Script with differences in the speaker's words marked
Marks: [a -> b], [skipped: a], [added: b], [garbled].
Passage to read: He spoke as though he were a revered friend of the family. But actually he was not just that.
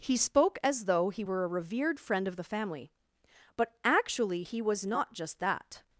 He spoke as though he were a revered friend of the family. But actually he was not just that.